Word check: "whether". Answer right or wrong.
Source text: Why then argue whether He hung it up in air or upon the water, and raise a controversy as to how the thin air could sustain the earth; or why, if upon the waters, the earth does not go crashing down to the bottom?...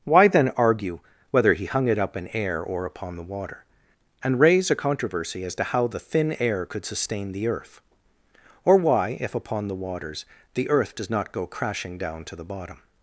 right